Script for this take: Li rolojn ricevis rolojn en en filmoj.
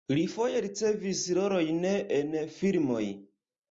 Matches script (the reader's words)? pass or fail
fail